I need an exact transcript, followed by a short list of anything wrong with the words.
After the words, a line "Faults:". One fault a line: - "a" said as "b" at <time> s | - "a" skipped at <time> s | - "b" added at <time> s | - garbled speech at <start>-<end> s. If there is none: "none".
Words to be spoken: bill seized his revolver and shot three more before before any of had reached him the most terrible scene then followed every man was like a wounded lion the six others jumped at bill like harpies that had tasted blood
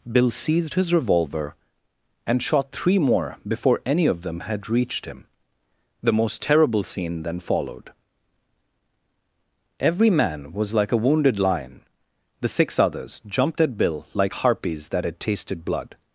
bill seized his revolver and shot three more before any of them had reached him the most terrible scene then followed every man was like a wounded lion the six others jumped at bill like harpies that had tasted blood
Faults:
- "before" skipped at 3.8 s
- "them" added at 4.2 s